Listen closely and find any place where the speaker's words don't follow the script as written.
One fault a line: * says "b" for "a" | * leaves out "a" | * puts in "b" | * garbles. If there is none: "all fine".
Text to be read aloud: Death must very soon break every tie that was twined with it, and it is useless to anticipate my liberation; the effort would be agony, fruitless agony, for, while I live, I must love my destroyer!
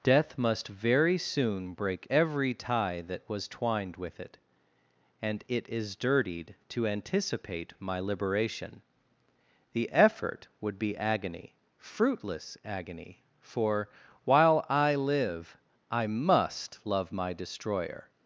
* says "dirtied" for "useless"